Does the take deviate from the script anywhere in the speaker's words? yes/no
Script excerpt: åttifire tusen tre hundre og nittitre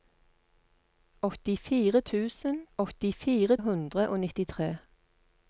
yes